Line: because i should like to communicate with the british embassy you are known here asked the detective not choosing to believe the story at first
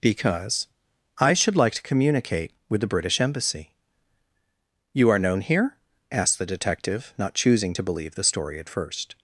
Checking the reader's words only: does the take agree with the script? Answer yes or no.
yes